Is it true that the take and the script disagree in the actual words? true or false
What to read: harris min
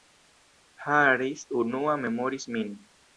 true